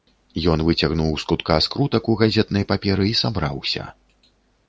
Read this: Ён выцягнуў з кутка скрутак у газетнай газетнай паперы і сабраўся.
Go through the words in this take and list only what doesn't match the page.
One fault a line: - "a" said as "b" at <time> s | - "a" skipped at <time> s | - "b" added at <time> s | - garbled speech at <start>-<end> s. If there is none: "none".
- "газетнай" skipped at 2.6 s